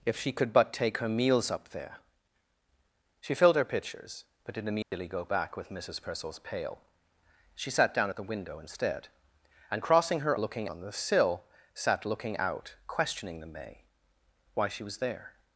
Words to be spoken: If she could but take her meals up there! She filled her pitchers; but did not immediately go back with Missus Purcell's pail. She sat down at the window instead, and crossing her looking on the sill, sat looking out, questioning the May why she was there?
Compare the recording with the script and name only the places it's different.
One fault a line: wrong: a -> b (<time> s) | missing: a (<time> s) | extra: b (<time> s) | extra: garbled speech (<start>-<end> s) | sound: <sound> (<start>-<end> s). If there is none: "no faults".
sound: dropout (4.8-4.9 s)